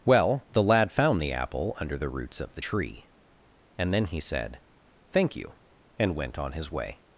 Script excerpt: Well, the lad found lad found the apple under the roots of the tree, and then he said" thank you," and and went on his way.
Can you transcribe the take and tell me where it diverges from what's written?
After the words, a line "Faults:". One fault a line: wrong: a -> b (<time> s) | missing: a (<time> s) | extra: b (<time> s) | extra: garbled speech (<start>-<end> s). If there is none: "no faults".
Well, the lad found the apple under the roots of the tree, and then he said" thank you," and went on his way.
Faults:
missing: lad found (1.2 s)
missing: and (6.1 s)